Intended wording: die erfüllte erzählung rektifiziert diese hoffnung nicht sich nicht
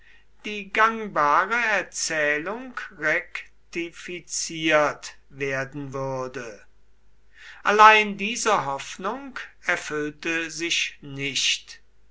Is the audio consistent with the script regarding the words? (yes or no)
no